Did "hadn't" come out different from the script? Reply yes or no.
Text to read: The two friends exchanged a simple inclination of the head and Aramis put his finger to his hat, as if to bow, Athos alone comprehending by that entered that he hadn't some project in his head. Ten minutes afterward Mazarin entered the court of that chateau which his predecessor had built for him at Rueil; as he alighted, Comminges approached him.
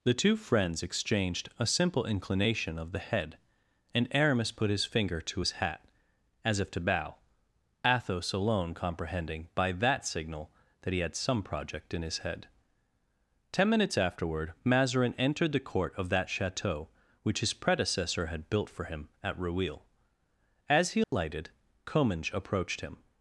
yes